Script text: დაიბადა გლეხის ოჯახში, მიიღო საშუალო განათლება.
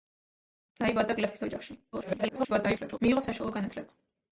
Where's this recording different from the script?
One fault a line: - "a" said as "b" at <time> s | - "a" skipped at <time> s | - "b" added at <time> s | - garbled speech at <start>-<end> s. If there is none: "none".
- garbled speech at 1.9-3.0 s